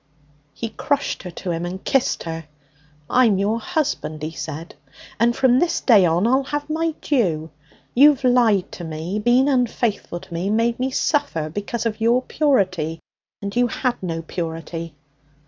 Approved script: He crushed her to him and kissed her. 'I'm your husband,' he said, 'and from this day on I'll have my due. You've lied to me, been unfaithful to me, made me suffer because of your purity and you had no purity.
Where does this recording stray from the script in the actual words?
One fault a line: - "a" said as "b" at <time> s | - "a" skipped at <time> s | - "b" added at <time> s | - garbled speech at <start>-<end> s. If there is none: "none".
none